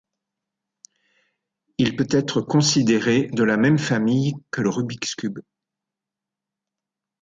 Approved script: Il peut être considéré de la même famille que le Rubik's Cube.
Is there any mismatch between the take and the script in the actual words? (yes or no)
no